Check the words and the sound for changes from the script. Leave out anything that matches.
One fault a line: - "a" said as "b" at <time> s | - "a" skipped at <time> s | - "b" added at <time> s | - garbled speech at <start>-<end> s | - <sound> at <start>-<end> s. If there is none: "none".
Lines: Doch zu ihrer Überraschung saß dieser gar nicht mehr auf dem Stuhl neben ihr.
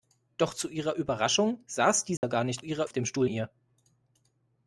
- dropout at 2.2-2.2 s
- "mehr" said as "ihrer" at 2.6 s
- "neben" skipped at 3.3 s